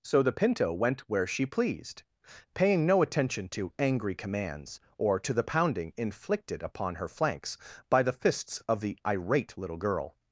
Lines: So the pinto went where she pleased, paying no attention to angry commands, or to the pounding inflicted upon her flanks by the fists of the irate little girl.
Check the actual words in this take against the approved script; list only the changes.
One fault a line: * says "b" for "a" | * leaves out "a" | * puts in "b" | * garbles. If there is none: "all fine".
all fine